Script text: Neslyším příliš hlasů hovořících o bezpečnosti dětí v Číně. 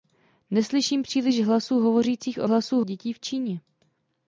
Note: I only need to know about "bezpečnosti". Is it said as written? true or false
false